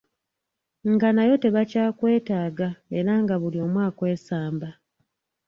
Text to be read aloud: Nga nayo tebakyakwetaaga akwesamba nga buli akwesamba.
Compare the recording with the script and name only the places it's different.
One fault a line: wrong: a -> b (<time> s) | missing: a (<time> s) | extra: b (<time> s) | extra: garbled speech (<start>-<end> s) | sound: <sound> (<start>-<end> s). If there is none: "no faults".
wrong: akwesamba -> era (3.0 s)
extra: omu (3.6 s)